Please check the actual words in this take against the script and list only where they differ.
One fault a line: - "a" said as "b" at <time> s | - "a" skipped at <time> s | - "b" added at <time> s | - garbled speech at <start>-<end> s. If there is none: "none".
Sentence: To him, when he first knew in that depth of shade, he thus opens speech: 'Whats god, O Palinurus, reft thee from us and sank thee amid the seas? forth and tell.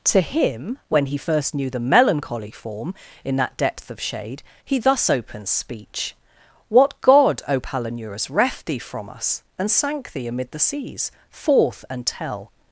- "the melancholy form" added at 1.7 s
- "Whats" said as "What" at 6.7 s